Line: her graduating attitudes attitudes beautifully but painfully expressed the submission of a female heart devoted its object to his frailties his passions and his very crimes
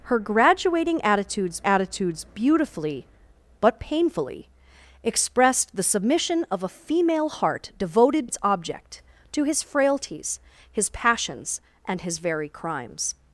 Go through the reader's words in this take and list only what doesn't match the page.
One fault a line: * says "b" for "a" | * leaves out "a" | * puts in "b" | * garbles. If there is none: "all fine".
all fine